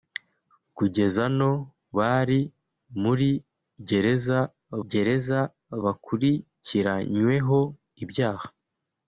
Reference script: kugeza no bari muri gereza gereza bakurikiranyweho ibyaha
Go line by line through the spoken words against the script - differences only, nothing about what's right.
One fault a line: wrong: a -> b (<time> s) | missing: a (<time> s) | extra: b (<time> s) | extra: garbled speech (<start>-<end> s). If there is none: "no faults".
no faults